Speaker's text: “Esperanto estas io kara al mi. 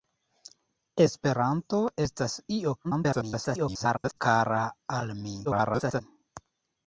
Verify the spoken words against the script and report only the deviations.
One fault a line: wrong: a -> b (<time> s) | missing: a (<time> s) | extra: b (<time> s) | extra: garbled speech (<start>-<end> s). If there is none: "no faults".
extra: garbled speech (2.8-4.2 s)
extra: garbled speech (5.4-6.0 s)